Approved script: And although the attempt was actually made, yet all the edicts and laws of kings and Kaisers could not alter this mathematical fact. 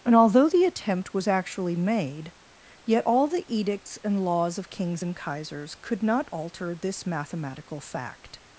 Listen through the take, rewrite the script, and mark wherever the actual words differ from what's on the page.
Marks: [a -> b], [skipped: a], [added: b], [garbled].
And although the attempt was actually made, yet all the edicts and laws of kings and Kaisers could not alter this mathematical fact.